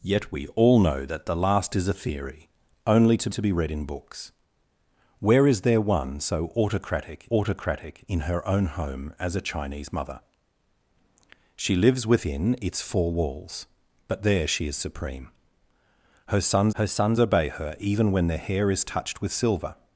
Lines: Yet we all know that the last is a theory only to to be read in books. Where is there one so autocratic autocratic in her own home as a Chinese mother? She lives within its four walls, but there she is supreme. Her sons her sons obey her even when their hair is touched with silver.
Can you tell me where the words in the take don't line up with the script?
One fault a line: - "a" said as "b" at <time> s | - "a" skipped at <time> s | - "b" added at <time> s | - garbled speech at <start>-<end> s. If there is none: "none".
none